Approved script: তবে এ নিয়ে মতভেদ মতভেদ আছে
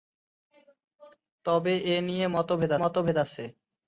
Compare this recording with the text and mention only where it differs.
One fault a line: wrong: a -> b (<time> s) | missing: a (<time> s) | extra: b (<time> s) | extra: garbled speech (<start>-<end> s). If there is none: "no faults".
no faults